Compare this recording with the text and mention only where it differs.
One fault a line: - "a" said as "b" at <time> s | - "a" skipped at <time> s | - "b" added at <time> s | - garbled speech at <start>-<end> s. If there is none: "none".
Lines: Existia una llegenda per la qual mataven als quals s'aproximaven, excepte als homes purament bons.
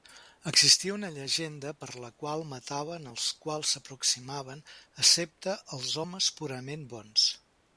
none